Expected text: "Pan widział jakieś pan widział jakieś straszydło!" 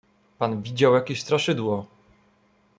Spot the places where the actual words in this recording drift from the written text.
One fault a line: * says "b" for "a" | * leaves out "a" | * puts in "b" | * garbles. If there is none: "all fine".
* leaves out "pan widział jakieś"